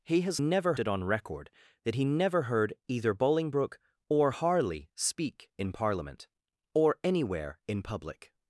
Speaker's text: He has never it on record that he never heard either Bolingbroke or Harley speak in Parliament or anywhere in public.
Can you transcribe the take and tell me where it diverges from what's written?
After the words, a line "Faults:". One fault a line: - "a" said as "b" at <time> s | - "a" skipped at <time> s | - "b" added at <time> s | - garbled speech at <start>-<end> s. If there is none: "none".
He has never it on record that he never heard either Bolingbroke or Harley speak in Parliament or anywhere in public.
Faults:
none